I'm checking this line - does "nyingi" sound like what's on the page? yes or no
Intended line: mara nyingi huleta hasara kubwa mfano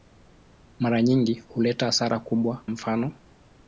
yes